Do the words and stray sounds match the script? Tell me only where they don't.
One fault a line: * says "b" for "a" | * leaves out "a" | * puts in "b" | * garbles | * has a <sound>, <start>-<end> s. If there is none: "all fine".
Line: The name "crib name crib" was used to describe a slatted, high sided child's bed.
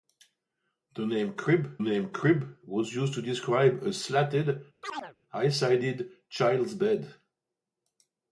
* has a chirp, 4.8-5.2 s